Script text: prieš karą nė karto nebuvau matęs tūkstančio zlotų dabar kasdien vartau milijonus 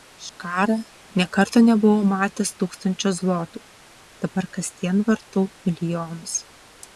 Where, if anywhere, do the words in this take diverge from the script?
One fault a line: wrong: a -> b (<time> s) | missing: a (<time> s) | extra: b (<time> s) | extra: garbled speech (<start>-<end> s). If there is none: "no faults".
no faults